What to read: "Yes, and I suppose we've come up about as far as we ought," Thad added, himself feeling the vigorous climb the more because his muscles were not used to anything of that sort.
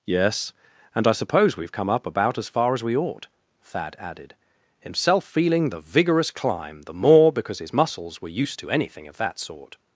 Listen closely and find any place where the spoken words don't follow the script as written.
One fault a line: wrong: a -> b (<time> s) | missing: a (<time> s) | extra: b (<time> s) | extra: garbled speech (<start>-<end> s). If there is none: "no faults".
missing: not (8.3 s)